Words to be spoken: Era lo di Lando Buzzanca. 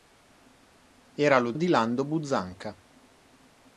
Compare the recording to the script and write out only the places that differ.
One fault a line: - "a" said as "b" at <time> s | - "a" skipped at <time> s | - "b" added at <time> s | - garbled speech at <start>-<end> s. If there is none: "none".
none